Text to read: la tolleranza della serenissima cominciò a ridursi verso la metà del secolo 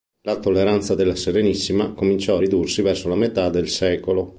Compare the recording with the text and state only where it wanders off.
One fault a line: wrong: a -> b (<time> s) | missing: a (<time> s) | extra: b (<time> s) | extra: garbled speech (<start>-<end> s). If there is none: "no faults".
no faults